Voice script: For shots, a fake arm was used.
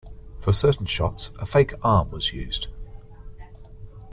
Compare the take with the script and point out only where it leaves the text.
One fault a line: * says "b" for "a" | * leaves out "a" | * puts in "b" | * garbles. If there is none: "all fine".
* puts in "certain"